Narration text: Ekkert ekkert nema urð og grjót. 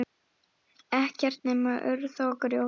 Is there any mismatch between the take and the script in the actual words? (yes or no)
yes